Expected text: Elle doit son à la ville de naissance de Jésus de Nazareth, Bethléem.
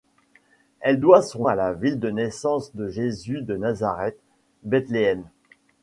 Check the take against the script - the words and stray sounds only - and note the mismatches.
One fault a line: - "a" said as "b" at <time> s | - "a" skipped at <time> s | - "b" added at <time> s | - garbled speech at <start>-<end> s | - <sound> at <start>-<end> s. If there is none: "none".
none